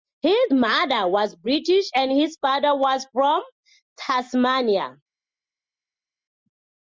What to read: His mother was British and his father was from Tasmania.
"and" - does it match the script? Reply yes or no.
yes